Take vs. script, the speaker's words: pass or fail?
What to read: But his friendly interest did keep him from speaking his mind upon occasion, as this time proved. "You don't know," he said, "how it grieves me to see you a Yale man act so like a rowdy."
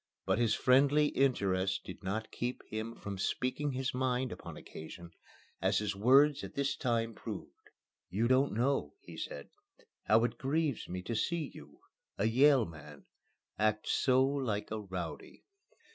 fail